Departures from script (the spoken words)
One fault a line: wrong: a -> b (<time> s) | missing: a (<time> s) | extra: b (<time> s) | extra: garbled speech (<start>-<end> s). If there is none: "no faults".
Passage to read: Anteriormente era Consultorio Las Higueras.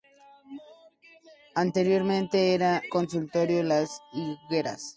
no faults